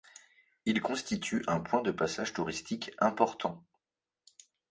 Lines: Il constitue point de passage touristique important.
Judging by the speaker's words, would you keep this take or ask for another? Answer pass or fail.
fail